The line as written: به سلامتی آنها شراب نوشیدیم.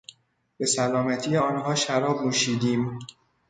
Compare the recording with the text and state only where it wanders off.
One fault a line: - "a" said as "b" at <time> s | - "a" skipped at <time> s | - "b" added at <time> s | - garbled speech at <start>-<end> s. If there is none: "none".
none